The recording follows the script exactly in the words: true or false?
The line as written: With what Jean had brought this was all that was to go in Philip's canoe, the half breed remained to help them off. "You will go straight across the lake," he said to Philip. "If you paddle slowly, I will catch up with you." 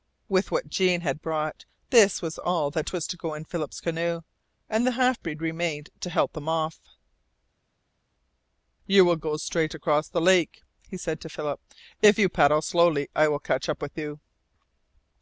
false